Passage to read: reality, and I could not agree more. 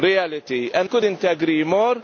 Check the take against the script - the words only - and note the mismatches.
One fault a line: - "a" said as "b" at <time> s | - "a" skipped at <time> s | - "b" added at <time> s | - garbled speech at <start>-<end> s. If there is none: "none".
- "I" skipped at 0.9 s